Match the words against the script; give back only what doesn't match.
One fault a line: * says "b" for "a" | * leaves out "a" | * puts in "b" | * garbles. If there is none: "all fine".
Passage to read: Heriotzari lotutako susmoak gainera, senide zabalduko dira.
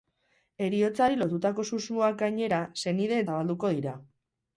all fine